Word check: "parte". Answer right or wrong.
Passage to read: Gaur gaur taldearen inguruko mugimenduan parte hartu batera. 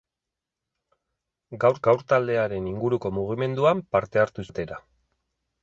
right